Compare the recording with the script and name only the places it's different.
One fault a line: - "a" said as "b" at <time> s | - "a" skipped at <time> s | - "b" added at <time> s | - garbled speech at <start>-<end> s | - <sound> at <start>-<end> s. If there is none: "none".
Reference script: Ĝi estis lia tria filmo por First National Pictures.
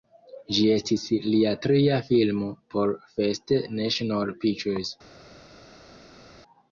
none